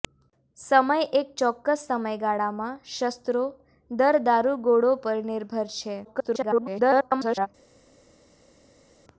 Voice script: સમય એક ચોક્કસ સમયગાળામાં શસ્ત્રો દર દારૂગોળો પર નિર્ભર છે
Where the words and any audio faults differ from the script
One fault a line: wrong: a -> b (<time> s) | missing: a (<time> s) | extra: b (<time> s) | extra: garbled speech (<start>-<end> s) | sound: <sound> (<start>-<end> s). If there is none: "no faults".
extra: garbled speech (6.0-7.5 s)